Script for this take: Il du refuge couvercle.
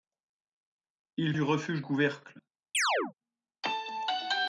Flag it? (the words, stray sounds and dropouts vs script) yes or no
yes